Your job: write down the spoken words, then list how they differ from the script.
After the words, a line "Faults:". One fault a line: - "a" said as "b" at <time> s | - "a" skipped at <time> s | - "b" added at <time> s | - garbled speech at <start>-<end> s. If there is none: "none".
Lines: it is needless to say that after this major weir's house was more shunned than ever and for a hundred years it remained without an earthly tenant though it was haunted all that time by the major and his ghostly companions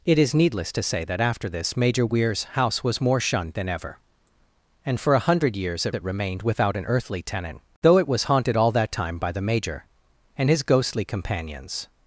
it is needless to say that after this major weir's house was more shunned than ever and for a hundred years it it remained without an earthly tenant though it was haunted all that time by the major and his ghostly companions
Faults:
- "it" added at 5.9 s